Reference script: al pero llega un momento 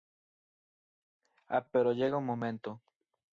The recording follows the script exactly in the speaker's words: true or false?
true